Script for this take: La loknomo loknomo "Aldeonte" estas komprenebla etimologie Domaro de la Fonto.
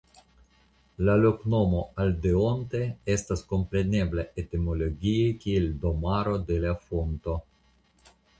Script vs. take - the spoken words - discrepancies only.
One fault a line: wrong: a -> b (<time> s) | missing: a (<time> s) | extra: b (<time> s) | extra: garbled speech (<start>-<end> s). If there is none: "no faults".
missing: loknomo (1.8 s)
extra: kiel (5.4 s)